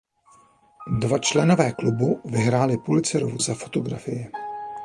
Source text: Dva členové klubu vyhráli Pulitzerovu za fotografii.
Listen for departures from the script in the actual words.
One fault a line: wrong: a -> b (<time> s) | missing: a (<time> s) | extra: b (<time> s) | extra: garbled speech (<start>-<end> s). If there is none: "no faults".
no faults